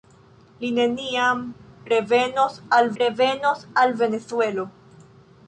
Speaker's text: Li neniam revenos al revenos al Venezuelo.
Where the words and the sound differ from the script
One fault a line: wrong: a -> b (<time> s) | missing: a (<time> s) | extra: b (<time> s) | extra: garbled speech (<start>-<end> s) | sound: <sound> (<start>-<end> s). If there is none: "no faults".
no faults